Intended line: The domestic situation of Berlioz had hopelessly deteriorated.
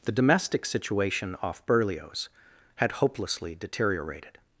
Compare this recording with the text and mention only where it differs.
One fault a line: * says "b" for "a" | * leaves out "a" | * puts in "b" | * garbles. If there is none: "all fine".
* says "off" for "of"